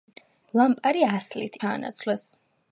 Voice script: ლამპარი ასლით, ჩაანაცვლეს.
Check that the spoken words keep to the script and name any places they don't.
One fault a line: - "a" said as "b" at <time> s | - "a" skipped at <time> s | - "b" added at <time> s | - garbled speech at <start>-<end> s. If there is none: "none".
none